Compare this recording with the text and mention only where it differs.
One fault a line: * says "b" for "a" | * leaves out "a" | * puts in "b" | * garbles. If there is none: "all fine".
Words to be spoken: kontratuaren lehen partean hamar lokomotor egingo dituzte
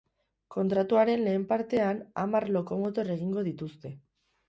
all fine